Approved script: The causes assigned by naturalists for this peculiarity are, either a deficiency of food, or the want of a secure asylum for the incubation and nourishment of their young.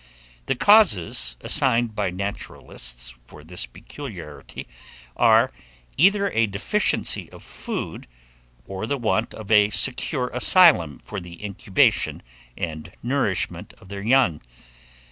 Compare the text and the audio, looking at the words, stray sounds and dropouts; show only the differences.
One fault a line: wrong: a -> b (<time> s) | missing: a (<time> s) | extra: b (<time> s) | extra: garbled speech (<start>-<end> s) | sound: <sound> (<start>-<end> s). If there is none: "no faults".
no faults